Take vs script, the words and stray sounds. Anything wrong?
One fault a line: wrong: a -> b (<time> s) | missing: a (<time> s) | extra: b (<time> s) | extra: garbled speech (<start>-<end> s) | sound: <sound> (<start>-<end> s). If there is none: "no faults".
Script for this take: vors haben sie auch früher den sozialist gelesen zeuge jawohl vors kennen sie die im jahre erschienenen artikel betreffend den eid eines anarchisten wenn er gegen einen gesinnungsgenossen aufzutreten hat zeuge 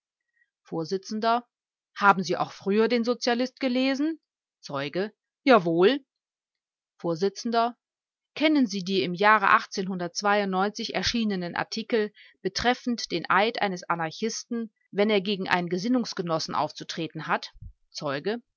no faults